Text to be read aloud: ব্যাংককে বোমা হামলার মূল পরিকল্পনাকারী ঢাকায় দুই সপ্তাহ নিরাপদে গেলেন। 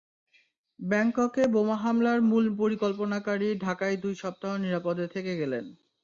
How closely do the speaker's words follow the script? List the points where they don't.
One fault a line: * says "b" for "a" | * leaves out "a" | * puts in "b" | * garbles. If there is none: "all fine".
* puts in "থেকে"